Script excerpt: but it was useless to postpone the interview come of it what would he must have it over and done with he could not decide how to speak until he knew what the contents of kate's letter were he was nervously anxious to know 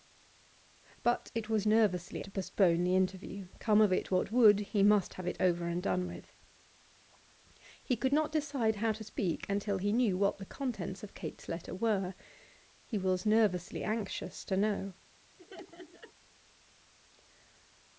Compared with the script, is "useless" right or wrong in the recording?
wrong